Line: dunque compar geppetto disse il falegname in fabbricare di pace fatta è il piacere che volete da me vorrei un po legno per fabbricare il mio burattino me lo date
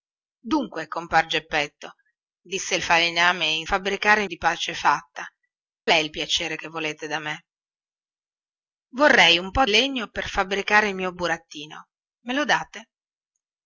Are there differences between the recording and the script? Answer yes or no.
no